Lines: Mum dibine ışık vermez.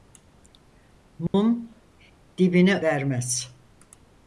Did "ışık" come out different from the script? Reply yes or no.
yes